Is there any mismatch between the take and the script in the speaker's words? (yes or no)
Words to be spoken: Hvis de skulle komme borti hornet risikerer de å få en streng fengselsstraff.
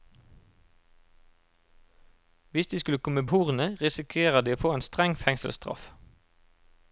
yes